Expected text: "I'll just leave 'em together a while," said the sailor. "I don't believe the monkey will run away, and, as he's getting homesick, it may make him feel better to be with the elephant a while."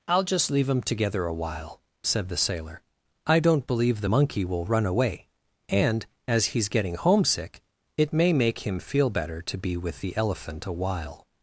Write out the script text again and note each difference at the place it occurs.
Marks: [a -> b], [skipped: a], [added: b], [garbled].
"I'll just leave 'em together a while," said the sailor. "I don't believe the monkey will run away, and, as he's getting homesick, it may make him feel better to be with the elephant a while."